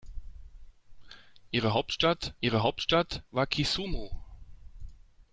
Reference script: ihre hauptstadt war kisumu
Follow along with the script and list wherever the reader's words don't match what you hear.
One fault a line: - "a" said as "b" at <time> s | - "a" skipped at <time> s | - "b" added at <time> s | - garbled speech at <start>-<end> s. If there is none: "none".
- "ihre hauptstadt" added at 2.4 s